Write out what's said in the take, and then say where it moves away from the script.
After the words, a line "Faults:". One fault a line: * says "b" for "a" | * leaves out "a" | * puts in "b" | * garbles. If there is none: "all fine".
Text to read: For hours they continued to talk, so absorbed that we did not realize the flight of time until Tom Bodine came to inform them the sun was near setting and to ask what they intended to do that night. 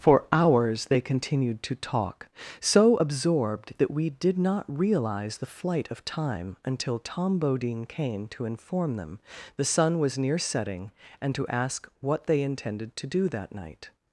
For hours they continued to talk, so absorbed that we did not realize the flight of time until Tom Bodine came to inform them the sun was near setting and to ask what they intended to do that night.
Faults:
all fine